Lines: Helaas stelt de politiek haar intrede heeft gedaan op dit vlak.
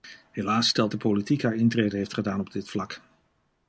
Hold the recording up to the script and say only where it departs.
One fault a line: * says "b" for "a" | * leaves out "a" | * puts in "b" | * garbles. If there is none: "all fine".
all fine